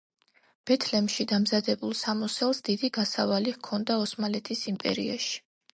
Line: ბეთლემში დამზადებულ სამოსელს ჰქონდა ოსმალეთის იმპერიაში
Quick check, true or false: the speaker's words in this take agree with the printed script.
false